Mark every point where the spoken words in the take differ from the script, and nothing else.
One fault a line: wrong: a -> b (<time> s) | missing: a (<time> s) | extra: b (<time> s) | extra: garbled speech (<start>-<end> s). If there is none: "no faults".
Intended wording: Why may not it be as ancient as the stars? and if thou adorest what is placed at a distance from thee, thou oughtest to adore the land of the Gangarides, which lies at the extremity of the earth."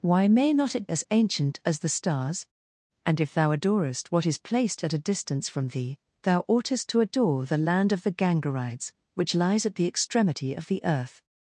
missing: be (0.9 s)